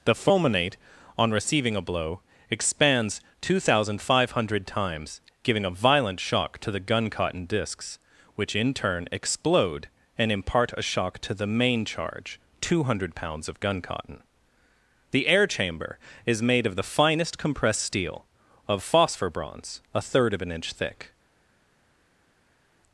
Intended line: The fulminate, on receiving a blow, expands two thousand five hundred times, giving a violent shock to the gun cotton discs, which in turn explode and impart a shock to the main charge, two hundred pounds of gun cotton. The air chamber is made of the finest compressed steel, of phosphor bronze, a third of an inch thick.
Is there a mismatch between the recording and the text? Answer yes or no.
no